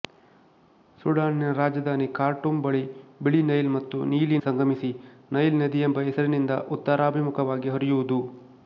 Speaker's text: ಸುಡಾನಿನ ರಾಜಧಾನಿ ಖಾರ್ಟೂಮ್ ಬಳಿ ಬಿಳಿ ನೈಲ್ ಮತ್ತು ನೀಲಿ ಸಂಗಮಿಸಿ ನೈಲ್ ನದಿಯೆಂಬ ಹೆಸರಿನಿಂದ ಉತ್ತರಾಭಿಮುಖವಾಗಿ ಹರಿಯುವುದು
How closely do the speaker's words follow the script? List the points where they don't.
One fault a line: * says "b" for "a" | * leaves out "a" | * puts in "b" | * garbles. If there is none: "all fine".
all fine